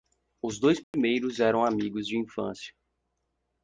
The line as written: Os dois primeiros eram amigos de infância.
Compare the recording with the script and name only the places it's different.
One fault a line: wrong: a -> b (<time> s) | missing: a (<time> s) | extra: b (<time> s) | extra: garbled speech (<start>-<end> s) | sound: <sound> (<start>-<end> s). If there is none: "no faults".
sound: dropout (0.8-0.9 s)